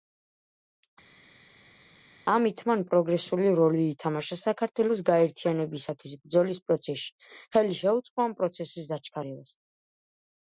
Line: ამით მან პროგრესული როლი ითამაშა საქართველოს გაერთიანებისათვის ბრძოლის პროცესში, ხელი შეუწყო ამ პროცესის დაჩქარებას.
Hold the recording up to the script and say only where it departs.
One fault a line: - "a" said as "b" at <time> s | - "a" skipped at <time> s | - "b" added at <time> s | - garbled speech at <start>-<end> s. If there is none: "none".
none